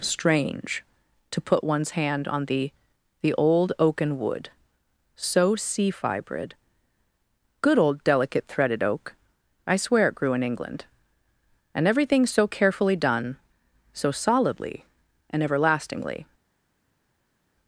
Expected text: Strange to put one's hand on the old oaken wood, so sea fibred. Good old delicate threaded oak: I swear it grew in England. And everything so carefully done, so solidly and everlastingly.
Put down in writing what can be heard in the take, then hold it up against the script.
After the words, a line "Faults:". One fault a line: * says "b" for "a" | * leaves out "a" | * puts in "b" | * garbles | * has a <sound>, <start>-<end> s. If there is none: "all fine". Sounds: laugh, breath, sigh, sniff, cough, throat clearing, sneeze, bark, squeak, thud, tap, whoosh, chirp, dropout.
Strange to put one's hand on the the old oaken wood, so sea fibred. Good old delicate threaded oak: I swear it grew in England. And everything so carefully done, so solidly and everlastingly.
Faults:
* puts in "the"